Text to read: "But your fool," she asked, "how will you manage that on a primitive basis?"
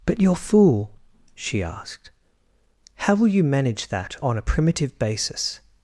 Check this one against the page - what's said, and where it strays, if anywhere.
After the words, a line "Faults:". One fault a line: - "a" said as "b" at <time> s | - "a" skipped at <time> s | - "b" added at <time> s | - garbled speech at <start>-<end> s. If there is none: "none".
"But your fool," she asked, "how will you manage that on a primitive basis?"
Faults:
none